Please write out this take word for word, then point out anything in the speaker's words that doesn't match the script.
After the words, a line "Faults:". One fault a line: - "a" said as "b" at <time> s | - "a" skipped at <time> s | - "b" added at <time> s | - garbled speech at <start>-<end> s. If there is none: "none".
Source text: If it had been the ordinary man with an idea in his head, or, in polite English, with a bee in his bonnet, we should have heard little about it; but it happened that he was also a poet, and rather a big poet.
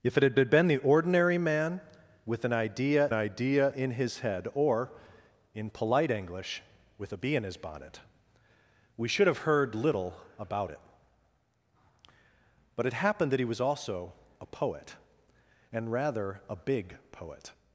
If it had had been the ordinary man with an idea idea in his head, or, in polite English, with a bee in his bonnet, we should have heard little about it; but it happened that he was also a poet, and rather a big poet.
Faults:
- "had" added at 0.4 s
- "idea" added at 3.1 s